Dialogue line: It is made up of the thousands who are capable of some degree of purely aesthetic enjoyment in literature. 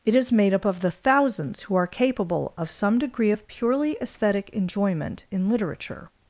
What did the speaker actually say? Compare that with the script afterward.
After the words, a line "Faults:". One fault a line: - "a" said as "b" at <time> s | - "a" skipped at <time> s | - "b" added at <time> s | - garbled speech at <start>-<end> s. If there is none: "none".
It is made up of the thousands who are capable of some degree of purely aesthetic enjoyment in literature.
Faults:
none